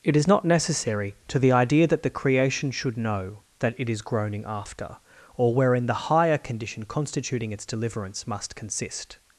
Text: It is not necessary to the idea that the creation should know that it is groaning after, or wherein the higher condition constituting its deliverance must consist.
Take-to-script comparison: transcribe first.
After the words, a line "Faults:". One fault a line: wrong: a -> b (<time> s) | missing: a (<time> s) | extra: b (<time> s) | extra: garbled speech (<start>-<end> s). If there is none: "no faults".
It is not necessary to the idea that the creation should know that it is groaning after, or wherein the higher condition constituting its deliverance must consist.
Faults:
no faults